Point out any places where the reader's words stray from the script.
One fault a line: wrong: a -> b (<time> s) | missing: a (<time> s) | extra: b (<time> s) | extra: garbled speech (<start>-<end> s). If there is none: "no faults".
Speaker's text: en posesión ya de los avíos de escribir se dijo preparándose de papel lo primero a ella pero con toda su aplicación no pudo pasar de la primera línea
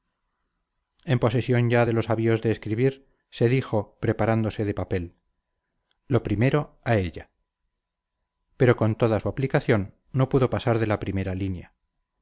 no faults